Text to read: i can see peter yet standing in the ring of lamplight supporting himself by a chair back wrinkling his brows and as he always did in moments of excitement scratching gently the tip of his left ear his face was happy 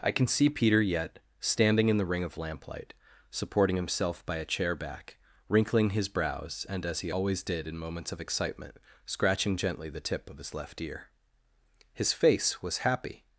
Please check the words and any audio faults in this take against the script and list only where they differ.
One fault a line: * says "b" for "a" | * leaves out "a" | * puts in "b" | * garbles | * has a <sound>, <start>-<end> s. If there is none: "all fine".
all fine